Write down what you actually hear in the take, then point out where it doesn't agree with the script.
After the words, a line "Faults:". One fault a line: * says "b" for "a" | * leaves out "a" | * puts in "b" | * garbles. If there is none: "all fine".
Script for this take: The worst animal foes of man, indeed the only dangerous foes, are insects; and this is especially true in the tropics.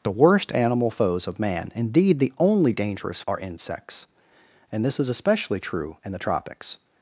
The worst animal foes of man, indeed the only dangerous are insects; and this is especially true in the tropics.
Faults:
* leaves out "foes"